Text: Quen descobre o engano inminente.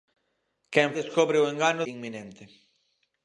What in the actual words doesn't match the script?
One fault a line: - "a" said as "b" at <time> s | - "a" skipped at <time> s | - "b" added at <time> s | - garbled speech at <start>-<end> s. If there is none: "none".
none